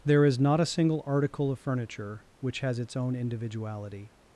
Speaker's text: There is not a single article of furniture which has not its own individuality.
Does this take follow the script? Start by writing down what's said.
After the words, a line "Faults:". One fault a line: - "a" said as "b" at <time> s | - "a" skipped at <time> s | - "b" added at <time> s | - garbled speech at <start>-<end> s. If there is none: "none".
There is not a single article of furniture which has its own individuality.
Faults:
- "not" skipped at 2.8 s